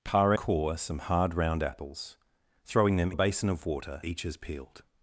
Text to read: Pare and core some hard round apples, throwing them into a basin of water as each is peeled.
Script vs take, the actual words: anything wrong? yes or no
yes